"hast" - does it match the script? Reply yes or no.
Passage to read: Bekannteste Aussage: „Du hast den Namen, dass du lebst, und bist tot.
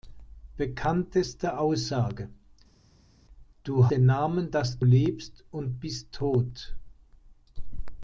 no